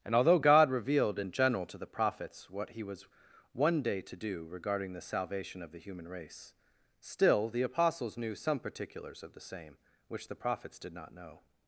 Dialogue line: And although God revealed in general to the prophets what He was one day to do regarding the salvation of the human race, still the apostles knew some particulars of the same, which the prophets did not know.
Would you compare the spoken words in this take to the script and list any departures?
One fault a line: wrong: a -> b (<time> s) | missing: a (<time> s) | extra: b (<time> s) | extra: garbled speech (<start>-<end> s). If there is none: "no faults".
no faults